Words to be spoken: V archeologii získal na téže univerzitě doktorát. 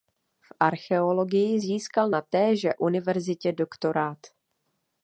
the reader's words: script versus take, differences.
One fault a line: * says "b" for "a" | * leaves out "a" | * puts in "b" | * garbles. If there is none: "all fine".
all fine